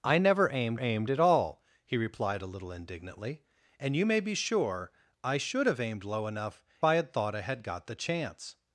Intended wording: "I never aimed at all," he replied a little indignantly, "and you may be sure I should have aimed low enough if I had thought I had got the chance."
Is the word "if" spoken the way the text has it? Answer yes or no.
no